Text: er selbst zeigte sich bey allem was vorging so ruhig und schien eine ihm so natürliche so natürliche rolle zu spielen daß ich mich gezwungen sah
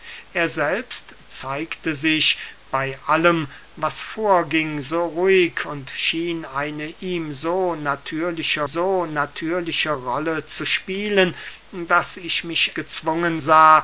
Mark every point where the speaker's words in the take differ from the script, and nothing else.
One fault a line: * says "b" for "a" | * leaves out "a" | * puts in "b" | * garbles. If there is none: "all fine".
all fine